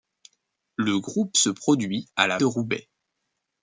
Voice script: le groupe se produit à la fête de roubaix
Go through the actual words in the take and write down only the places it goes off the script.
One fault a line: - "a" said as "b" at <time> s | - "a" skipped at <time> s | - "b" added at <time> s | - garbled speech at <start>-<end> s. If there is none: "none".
- "fête" skipped at 2.4 s